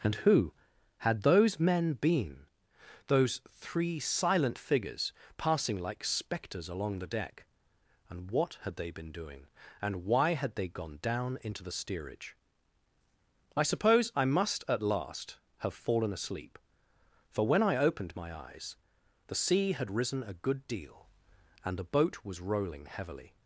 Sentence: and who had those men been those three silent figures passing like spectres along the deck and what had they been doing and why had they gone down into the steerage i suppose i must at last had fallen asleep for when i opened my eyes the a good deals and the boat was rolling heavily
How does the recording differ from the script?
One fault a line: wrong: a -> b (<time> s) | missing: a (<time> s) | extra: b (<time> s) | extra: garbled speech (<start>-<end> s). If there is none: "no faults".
wrong: had -> have (15.6 s)
extra: sea had risen (19.4 s)
wrong: deals -> deal (20.7 s)